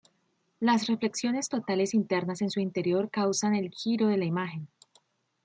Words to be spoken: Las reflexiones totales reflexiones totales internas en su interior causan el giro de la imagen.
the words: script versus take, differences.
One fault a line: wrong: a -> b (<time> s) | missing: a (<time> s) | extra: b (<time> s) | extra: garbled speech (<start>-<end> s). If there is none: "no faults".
missing: reflexiones totales (1.9 s)